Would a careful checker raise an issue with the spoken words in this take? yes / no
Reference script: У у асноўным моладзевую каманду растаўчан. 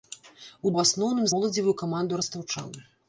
no